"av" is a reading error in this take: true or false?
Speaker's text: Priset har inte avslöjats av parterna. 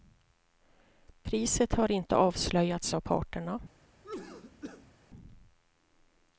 false